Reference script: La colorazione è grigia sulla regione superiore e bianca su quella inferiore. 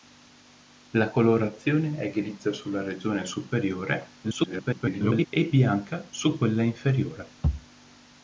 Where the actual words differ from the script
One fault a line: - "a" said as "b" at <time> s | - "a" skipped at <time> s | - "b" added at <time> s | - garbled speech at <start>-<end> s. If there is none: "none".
- garbled speech at 4.2-5.3 s